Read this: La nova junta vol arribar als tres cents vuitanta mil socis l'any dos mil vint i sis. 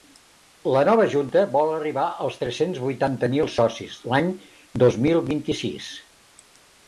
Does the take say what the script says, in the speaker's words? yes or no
yes